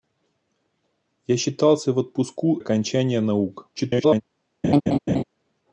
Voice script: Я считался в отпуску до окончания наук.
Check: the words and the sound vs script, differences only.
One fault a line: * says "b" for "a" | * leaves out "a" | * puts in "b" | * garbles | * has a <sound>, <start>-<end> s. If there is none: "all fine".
* leaves out "до"
* garbles
* has a laugh, 4.6-5.2 s